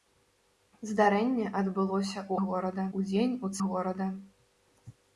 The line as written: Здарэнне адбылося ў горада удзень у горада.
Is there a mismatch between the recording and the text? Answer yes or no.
no